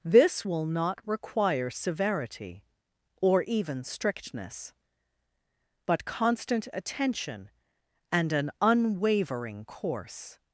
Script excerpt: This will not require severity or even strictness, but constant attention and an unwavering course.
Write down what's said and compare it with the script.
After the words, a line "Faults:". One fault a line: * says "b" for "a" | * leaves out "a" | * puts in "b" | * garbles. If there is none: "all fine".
This will not require severity or even strictness, but constant attention and an unwavering course.
Faults:
all fine